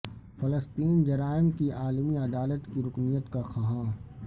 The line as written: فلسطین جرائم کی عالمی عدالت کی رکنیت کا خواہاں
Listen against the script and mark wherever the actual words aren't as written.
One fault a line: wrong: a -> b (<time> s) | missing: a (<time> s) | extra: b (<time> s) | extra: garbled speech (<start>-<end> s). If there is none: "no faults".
no faults